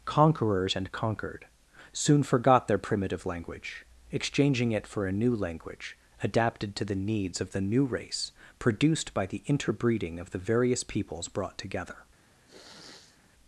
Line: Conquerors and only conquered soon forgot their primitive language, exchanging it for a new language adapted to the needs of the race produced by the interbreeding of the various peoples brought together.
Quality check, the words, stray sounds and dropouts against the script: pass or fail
fail